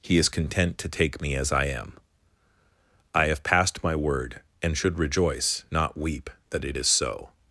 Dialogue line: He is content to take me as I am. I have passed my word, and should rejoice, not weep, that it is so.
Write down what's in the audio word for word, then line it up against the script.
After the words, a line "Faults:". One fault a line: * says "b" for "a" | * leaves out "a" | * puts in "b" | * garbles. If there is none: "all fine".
He is content to take me as I am. I have passed my word, and should rejoice, not weep, that it is so.
Faults:
all fine